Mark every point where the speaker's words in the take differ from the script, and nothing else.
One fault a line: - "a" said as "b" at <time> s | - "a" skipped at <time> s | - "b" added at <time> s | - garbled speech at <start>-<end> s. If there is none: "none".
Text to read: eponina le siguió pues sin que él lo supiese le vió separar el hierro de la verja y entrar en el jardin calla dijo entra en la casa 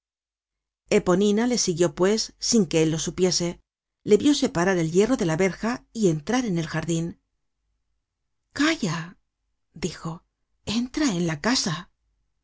none